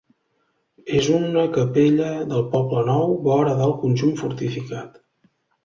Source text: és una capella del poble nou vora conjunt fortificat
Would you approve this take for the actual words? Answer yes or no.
no